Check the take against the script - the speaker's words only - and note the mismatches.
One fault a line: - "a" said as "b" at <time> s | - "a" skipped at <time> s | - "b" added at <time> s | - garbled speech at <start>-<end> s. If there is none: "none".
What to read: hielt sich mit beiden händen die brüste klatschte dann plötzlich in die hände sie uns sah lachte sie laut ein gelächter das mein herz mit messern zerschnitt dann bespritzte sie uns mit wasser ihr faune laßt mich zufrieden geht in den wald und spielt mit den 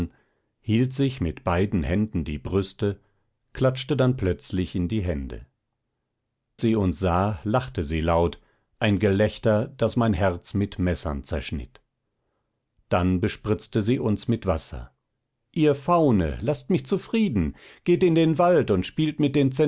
none